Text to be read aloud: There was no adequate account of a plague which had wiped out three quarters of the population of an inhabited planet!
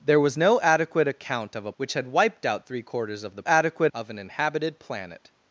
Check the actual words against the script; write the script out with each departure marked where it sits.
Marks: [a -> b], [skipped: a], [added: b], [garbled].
There was no adequate account of a [skipped: plague] which had wiped out three quarters of the [population -> adequate] of an inhabited planet!